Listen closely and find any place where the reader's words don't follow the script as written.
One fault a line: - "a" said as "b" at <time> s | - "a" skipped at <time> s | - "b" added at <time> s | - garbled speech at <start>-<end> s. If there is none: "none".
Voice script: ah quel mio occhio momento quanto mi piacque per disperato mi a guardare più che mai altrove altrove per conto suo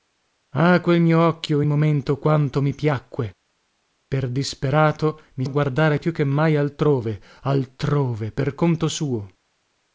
none